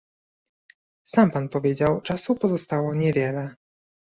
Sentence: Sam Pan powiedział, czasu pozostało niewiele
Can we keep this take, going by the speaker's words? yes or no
yes